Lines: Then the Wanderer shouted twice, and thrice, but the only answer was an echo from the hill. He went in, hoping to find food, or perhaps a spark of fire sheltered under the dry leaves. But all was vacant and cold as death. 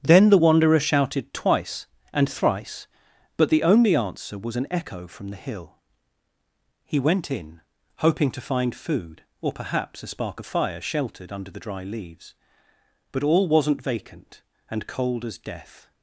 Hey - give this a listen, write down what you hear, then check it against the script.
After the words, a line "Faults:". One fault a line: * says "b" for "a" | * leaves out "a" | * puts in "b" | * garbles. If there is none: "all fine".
Then the Wanderer shouted twice, and thrice, but the only answer was an echo from the hill. He went in, hoping to find food, or perhaps a spark of fire sheltered under the dry leaves. But all wasn't vacant and cold as death.
Faults:
* says "wasn't" for "was"